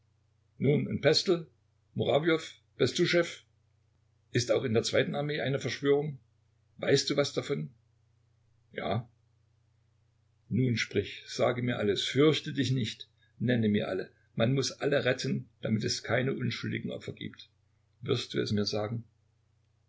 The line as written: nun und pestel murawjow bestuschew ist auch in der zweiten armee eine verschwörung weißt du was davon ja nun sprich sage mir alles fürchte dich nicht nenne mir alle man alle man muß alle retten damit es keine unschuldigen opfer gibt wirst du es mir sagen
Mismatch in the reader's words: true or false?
true